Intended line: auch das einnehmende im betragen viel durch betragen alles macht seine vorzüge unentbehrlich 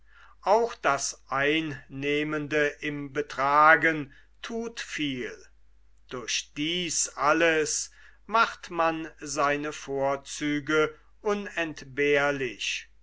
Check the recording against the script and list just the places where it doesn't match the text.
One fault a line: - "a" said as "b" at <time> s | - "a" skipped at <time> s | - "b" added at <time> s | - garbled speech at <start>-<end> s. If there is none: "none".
- "thut" added at 4.4 s
- "betragen" said as "dies" at 6.6 s
- "man" added at 8.7 s